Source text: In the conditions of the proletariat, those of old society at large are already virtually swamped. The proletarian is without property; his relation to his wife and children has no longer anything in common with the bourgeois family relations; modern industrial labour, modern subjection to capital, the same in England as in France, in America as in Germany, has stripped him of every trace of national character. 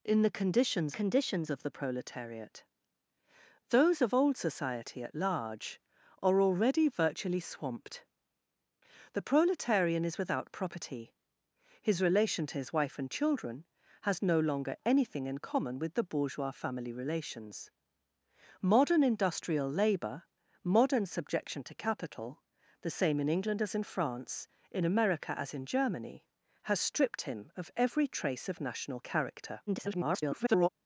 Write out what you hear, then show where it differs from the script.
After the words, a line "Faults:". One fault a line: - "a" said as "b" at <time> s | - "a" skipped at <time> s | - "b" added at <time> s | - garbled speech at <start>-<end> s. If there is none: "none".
In the conditions conditions of the proletariat, those of old society at large are already virtually swamped. The proletarian is without property; his relation to his wife and children has no longer anything in common with the bourgeois family relations; modern industrial labour, modern subjection to capital, the same in England as in France, in America as in Germany, has stripped him of every trace of national character. [garbled]
Faults:
- "conditions" added at 0.9 s
- garbled speech at 29.7-30.7 s